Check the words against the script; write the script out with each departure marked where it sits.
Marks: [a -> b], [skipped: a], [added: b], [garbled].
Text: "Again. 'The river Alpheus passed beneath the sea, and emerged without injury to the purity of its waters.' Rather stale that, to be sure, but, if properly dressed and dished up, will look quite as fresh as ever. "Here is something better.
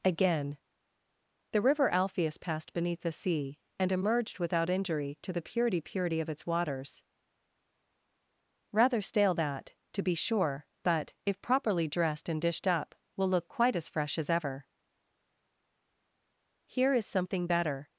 "Again. 'The river Alpheus passed beneath the sea, and emerged without injury to the purity [added: purity] of its waters.' Rather stale that, to be sure, but, if properly dressed and dished up, will look quite as fresh as ever. "Here is something better.